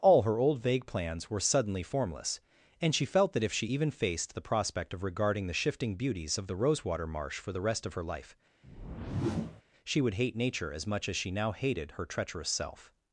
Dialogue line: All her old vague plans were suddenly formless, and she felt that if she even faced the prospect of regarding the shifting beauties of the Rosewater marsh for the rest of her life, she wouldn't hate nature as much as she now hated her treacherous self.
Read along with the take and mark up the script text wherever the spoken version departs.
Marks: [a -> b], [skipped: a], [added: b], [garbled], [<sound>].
All her old vague plans were suddenly formless, and she felt that if she even faced the prospect of regarding the shifting beauties of the Rosewater marsh for the rest of her life, [whoosh] she [wouldn't -> would] hate nature as much as she now hated her treacherous self.